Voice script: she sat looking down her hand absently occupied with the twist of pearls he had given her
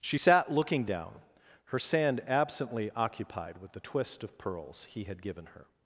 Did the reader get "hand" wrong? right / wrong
wrong